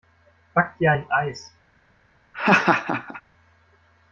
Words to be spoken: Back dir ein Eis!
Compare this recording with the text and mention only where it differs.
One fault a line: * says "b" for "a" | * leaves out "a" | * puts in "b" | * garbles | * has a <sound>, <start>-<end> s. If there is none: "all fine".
* has a laugh, 2.3-3.2 s